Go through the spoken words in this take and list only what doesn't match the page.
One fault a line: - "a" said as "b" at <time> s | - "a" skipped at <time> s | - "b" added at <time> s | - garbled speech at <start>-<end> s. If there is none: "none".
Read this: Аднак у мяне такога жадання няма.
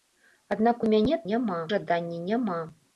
- "такога" said as "няма" at 1.3 s